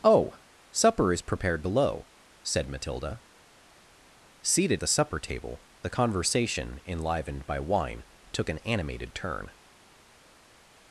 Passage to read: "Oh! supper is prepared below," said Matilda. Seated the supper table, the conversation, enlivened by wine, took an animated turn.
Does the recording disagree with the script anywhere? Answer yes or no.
no